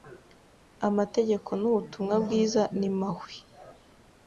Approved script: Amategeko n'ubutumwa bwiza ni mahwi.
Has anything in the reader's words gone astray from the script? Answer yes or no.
no